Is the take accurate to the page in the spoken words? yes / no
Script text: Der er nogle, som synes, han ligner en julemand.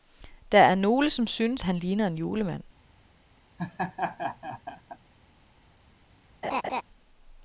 yes